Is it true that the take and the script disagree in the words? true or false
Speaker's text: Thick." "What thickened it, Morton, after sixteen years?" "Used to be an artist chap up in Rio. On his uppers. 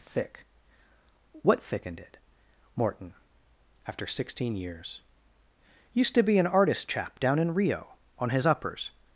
true